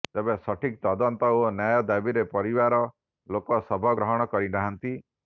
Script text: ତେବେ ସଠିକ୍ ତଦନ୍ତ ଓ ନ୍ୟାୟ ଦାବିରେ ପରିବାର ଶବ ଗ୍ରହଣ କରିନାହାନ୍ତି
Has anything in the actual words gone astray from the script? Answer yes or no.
yes